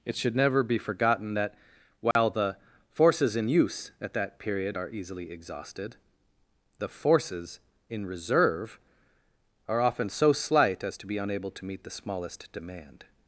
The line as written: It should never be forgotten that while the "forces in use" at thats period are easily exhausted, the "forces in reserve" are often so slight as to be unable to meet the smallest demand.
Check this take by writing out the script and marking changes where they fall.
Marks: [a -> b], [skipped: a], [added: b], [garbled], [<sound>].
It should never be forgotten that while [dropout] the "forces in use" at [thats -> that] period are easily exhausted, the "forces in reserve" are often so slight as to be unable to meet the smallest demand.